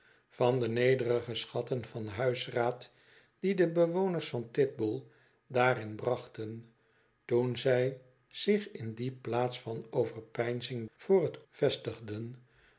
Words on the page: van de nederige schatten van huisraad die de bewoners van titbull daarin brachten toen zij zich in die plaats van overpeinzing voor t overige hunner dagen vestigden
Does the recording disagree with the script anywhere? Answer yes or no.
yes